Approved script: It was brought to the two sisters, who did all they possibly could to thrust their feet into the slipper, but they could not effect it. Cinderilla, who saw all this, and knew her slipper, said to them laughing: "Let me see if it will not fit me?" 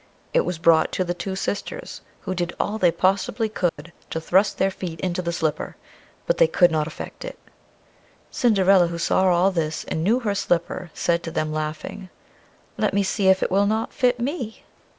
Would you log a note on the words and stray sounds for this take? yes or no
yes